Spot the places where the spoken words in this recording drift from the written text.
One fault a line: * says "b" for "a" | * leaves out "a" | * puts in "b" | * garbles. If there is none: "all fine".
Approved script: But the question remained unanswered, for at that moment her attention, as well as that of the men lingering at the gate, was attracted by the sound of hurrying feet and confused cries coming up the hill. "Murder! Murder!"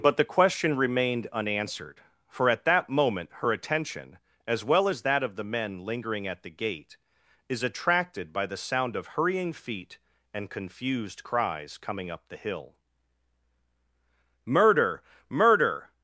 * says "is" for "was"